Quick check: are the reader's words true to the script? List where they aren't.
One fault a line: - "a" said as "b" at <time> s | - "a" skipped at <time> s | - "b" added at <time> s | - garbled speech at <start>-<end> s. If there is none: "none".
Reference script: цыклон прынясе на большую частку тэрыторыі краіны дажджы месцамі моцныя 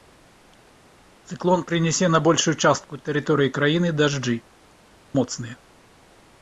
- "месцамі" skipped at 4.4 s